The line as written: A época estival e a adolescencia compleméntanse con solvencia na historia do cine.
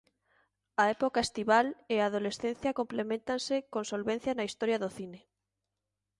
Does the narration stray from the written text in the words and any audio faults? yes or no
no